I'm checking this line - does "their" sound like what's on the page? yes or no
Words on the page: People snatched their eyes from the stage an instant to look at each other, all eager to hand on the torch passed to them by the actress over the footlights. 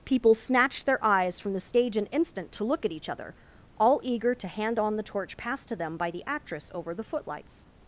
yes